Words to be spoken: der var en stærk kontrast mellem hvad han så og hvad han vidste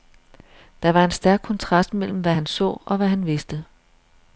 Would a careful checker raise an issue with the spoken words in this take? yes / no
no